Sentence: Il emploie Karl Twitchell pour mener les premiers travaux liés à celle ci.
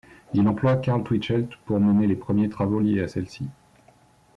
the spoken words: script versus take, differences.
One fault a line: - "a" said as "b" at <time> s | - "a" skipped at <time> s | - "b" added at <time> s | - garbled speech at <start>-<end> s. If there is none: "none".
none